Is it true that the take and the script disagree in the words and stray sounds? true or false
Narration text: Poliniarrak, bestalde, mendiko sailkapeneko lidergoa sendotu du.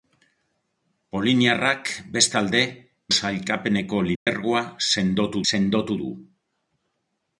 true